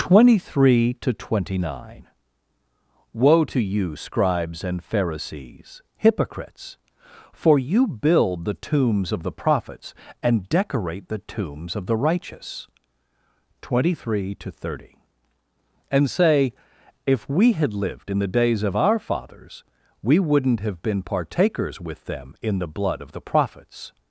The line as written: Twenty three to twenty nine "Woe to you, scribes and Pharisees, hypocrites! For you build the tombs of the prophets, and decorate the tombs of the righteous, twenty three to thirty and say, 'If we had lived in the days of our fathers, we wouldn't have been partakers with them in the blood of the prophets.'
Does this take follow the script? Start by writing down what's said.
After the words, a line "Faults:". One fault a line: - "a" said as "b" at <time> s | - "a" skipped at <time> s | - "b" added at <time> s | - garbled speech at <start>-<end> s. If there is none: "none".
Twenty three to twenty nine "Woe to you, scribes and Pharisees, hypocrites! For you build the tombs of the prophets, and decorate the tombs of the righteous, twenty three to thirty and say, 'If we had lived in the days of our fathers, we wouldn't have been partakers with them in the blood of the prophets.'
Faults:
none